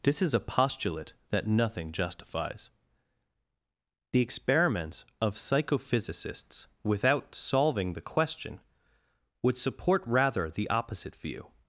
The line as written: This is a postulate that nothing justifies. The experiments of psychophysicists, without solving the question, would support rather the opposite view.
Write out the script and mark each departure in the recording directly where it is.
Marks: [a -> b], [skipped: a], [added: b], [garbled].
This is a postulate that nothing justifies. The experiments of psychophysicists, without solving the question, would support rather the opposite view.